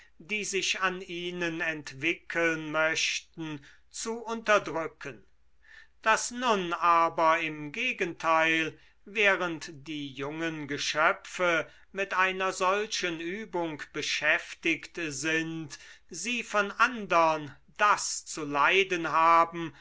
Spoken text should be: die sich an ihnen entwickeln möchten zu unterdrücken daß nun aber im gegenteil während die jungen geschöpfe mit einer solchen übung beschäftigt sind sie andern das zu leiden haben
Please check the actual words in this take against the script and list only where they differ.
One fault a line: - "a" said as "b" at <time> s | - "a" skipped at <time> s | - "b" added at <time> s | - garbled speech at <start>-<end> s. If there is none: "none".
- "von" added at 16.4 s